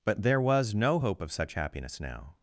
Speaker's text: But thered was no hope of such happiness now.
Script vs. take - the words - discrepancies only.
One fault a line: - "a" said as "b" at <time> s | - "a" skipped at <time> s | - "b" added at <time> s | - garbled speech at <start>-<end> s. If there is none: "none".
- "thered" said as "there" at 0.2 s